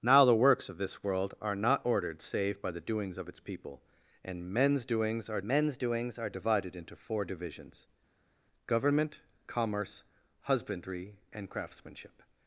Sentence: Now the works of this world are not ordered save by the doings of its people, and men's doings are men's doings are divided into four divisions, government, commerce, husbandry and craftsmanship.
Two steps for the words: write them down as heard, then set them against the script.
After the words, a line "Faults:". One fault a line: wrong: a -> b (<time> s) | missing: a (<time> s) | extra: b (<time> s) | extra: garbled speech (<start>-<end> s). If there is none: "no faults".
Now the works of this world are not ordered save by the doings of its people, and men's doings are men's doings are divided into four divisions, government, commerce, husbandry and craftsmanship.
Faults:
no faults